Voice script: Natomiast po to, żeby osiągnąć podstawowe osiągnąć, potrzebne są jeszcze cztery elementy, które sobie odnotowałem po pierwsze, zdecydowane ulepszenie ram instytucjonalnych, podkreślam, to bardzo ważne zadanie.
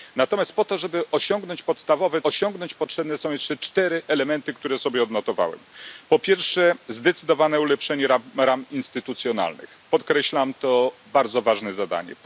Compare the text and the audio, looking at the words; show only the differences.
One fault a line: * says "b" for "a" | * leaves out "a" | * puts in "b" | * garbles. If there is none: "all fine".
all fine